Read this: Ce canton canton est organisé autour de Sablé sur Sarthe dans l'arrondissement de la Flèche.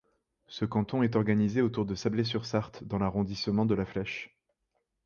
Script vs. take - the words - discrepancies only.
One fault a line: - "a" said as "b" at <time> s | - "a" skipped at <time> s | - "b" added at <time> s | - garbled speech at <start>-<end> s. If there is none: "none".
- "canton" skipped at 1.0 s